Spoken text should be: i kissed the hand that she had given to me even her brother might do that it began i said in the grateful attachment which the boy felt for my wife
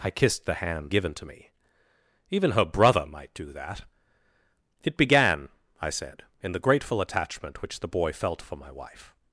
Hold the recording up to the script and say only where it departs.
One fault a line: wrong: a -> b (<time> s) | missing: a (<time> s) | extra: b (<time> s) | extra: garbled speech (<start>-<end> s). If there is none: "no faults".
missing: that she had (0.9 s)